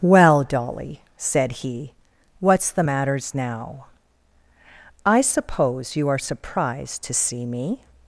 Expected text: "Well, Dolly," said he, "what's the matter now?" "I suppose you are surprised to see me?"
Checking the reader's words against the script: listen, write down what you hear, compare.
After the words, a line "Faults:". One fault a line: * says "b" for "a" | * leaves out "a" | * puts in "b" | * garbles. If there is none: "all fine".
"Well, Dolly," said he, "what's the matters now?" "I suppose you are surprised to see me?"
Faults:
* says "matters" for "matter"